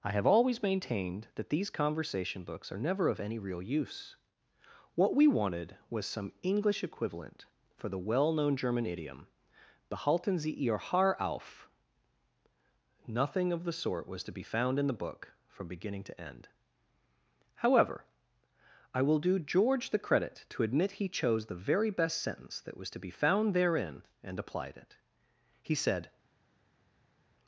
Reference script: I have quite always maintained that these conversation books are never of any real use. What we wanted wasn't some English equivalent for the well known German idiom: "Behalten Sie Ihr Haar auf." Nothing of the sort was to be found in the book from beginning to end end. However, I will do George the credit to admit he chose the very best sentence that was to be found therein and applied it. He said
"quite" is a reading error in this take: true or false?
true